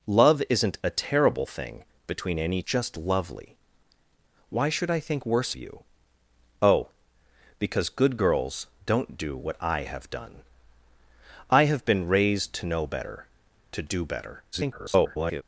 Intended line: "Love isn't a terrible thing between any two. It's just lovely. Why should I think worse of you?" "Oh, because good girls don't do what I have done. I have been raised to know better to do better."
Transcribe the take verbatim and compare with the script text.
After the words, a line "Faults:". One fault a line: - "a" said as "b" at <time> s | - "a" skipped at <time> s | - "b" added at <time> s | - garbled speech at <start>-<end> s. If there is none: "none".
"Love isn't a terrible thing between any just lovely. Why should I think worse you?" "Oh, because good girls don't do what I have done. I have been raised to know better to do better." [garbled]
Faults:
- "two It's" skipped at 2.6 s
- "of" skipped at 5.5 s
- garbled speech at 14.5-15.4 s